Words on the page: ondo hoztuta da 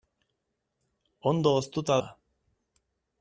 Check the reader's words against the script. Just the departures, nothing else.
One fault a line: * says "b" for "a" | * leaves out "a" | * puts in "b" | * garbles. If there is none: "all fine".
all fine